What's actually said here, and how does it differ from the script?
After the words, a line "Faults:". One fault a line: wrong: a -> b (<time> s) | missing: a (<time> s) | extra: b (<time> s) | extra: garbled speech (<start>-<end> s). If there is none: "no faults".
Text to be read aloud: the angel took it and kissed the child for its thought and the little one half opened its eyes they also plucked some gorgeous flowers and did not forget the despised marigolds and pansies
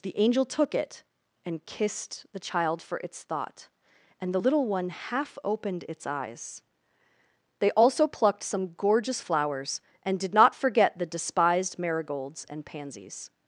the angel took it and kissed the child for its thought and the little one half opened its eyes they also plucked some gorgeous flowers and did not forget the despised marigolds and pansies
Faults:
no faults